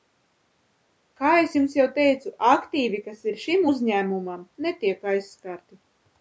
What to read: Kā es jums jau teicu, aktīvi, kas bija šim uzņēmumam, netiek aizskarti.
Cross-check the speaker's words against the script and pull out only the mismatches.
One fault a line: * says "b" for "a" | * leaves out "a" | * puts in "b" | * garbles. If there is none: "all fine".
* says "ir" for "bija"